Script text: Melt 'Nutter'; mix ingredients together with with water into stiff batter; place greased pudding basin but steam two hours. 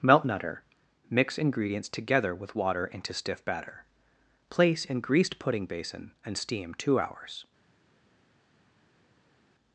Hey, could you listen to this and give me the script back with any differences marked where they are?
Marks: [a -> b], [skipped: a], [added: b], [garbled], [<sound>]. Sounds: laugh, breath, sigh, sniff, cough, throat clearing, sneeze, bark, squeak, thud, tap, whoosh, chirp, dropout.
Melt 'Nutter'; mix ingredients together with [skipped: with] water into stiff batter; place [added: in] greased pudding basin [but -> and] steam two hours.